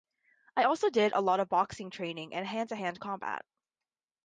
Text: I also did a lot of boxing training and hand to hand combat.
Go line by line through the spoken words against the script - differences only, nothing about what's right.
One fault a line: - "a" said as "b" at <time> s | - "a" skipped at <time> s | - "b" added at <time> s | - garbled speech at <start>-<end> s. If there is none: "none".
none